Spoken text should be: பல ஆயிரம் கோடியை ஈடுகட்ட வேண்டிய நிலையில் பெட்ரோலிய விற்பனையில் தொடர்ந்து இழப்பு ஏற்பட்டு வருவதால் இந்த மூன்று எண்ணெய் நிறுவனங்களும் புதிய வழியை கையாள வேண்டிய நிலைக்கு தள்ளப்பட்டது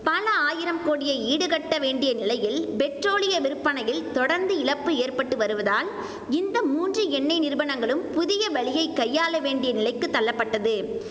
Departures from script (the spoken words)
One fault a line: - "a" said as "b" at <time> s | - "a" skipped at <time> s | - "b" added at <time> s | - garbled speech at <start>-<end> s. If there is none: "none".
none